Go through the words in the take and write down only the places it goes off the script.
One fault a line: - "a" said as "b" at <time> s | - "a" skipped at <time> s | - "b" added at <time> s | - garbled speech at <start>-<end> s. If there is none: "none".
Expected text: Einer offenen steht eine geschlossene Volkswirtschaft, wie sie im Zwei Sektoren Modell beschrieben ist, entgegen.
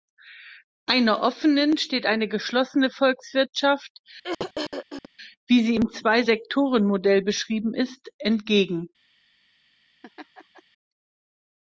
none